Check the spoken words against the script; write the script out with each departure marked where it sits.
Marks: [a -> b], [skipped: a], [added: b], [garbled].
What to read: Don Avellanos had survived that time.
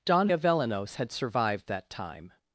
Don Avellanos had survived that time.